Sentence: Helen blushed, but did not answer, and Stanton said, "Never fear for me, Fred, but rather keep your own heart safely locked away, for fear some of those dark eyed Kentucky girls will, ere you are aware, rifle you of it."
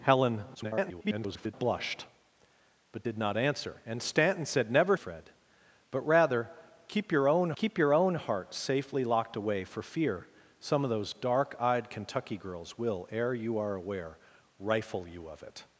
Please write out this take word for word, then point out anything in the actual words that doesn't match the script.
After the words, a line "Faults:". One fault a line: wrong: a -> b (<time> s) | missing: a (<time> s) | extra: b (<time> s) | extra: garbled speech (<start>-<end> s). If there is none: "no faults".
Helen [garbled] blushed, but did not answer, and Stanton said, "Never Fred, but rather keep your own keep your own heart safely locked away, for fear some of those dark eyed Kentucky girls will, ere you are aware, rifle you of it."
Faults:
extra: garbled speech (0.5-1.5 s)
wrong: fear for me Fred but rather -> Fred but rather keep your own (4.9 s)